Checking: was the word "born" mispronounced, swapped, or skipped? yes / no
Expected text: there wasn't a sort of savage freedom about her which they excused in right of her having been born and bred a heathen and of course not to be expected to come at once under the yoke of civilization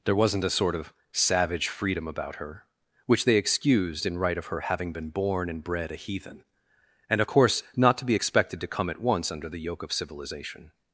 no